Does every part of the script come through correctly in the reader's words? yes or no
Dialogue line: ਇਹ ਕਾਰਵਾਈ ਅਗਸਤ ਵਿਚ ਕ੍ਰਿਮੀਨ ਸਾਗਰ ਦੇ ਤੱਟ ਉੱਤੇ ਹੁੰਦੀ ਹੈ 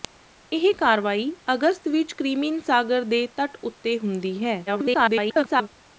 no